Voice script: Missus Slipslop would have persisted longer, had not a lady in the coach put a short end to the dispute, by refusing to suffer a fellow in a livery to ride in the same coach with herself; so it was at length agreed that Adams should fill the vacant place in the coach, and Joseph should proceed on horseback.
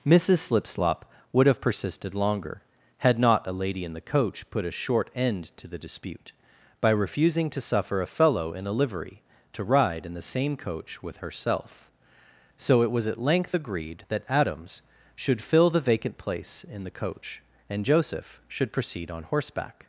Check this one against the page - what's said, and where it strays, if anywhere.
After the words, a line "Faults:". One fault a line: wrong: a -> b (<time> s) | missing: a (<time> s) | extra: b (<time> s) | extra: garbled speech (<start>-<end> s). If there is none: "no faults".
Missus Slipslop would have persisted longer, had not a lady in the coach put a short end to the dispute, by refusing to suffer a fellow in a livery to ride in the same coach with herself; so it was at length agreed that Adams should fill the vacant place in the coach, and Joseph should proceed on horseback.
Faults:
no faults